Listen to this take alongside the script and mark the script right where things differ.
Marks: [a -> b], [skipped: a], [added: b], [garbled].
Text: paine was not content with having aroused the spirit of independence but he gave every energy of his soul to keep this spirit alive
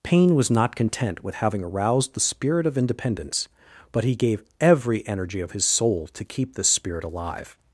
paine was not content with having aroused the spirit of independence but he gave every energy of his soul to keep this spirit alive